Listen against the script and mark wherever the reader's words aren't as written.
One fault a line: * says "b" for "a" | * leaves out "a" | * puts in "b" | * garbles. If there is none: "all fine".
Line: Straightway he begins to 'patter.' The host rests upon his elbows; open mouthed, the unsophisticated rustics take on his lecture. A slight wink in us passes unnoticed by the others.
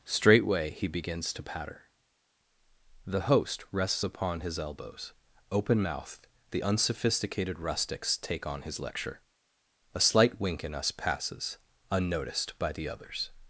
all fine